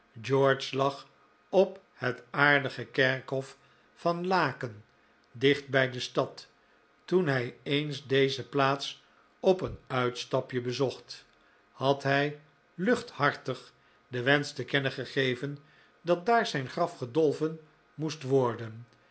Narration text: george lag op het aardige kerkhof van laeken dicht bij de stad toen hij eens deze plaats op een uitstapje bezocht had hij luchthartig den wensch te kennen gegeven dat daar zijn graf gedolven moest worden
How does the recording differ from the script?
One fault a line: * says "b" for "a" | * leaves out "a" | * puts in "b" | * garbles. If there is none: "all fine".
all fine